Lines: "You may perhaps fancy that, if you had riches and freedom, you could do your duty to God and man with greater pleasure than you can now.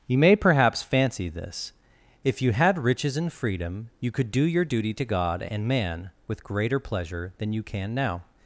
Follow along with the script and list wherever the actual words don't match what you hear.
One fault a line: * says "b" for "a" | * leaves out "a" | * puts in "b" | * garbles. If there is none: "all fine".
* says "this" for "that"